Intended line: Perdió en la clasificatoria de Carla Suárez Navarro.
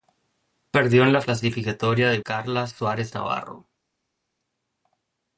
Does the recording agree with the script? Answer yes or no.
yes